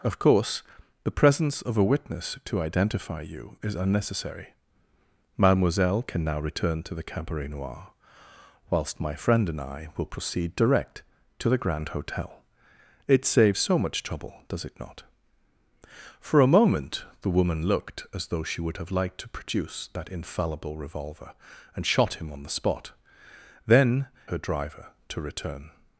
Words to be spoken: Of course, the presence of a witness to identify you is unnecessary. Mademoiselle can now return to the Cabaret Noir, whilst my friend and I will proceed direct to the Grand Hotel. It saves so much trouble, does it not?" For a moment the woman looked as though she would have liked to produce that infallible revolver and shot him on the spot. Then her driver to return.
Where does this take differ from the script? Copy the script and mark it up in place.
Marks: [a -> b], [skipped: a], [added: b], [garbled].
Of course, the presence of a witness to identify you is unnecessary. Mademoiselle can now return to the Cabaret Noir, whilst my friend and I will proceed direct to the Grand Hotel. It saves so much trouble, does it not?" For a moment the woman looked as though she would have liked to produce that infallible revolver and shot him on the spot. Then her driver to return.